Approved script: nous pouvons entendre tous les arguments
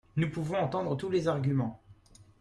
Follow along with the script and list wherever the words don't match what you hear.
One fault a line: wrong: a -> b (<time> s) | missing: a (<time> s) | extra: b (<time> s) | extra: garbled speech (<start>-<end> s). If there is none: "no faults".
no faults